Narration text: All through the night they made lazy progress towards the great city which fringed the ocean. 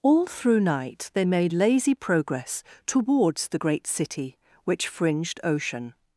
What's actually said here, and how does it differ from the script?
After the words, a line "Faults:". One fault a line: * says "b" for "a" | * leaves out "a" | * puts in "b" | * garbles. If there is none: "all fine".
All through night they made lazy progress towards the great city which fringed ocean.
Faults:
* leaves out "the"
* leaves out "the"